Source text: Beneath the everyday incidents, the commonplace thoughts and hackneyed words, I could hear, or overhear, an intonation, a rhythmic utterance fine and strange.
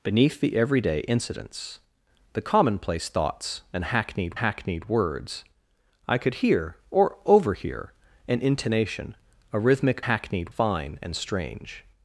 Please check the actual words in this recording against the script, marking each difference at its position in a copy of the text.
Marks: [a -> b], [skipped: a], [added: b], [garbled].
Beneath the everyday incidents, the commonplace thoughts and hackneyed [added: hackneyed] words, I could hear, or overhear, an intonation, a rhythmic [utterance -> hackneyed] fine and strange.